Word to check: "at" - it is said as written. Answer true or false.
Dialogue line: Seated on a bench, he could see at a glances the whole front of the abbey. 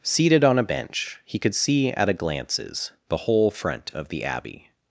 true